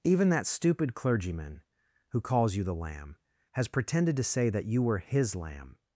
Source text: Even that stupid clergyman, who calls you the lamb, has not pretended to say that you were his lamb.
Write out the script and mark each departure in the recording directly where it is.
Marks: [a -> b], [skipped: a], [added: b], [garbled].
Even that stupid clergyman, who calls you the lamb, has [skipped: not] pretended to say that you were his lamb.